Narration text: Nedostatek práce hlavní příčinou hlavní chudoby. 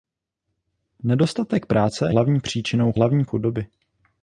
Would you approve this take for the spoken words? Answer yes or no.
yes